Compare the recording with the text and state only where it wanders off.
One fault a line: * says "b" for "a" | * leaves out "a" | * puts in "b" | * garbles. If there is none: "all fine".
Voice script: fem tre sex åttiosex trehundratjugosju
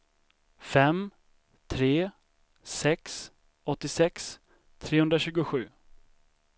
all fine